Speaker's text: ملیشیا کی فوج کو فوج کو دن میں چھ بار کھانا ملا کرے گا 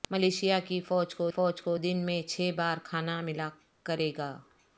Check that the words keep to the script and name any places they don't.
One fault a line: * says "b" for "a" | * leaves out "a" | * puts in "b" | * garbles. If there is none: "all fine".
all fine